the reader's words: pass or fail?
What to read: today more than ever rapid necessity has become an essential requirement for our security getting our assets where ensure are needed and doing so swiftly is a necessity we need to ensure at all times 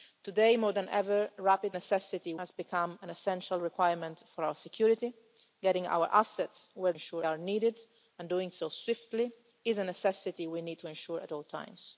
pass